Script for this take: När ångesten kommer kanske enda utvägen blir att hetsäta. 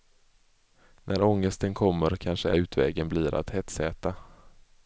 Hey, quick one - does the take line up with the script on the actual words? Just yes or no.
no